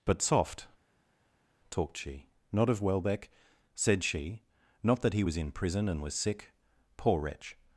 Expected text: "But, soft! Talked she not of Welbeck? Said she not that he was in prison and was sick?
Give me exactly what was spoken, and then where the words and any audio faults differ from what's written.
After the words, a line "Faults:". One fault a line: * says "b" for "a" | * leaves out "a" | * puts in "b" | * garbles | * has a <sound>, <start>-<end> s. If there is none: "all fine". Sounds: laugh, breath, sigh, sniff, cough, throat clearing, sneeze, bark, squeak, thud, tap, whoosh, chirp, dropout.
"But, soft! Talked she not of Welbeck? Said she not that he was in prison and was sick? Poor wretch
Faults:
* puts in "Poor wretch"